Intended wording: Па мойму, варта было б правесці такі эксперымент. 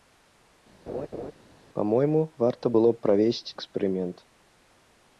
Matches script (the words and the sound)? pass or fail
fail